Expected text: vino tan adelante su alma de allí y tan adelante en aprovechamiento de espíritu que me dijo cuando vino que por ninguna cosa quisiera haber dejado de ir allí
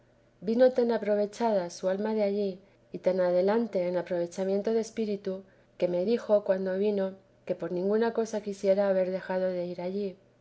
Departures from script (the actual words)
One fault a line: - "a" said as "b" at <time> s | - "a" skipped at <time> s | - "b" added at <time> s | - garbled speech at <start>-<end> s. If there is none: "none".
- "adelante" said as "aprovechada" at 0.9 s